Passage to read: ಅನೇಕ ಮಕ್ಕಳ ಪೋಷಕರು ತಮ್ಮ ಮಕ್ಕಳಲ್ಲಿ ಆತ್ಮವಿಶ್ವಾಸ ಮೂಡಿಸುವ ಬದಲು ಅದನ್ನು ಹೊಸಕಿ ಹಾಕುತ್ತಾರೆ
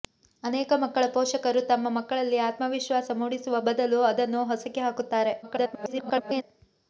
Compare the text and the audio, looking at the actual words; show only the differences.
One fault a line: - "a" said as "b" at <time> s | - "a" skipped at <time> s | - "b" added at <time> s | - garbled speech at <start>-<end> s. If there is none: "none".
- garbled speech at 5.4-6.4 s